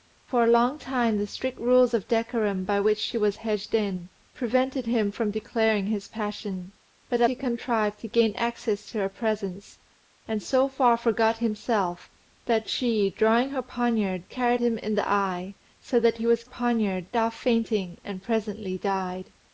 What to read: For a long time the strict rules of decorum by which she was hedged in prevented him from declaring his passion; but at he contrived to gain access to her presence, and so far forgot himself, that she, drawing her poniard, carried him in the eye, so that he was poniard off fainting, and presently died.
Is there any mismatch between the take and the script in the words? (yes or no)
no